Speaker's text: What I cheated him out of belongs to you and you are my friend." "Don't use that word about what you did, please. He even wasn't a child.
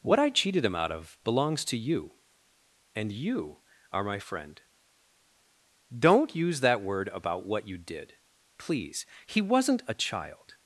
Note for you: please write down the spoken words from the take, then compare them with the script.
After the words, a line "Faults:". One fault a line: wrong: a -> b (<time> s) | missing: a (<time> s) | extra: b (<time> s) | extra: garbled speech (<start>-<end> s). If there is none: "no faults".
What I cheated him out of belongs to you and you are my friend." "Don't use that word about what you did, please. He wasn't a child.
Faults:
missing: even (9.4 s)